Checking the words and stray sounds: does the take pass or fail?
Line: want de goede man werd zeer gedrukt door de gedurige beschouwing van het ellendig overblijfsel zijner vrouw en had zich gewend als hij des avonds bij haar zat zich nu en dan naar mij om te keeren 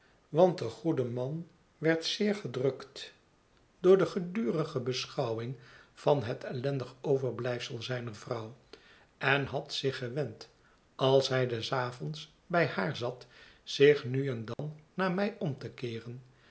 fail